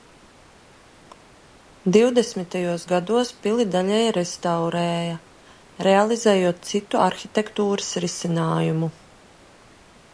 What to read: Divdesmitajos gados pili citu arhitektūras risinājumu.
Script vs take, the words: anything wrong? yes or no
yes